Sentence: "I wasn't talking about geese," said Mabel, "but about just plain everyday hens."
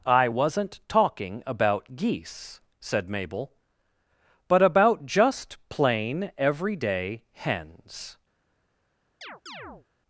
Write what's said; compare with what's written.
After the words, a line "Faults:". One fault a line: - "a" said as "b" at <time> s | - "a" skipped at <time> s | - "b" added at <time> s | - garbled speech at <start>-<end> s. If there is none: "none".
"I wasn't talking about geese," said Mabel, "but about just plain everyday hens."
Faults:
none